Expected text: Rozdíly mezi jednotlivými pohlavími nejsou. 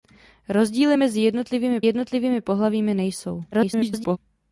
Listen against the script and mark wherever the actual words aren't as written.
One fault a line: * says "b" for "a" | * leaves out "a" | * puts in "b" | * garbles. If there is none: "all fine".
* puts in "jednotlivými"
* garbles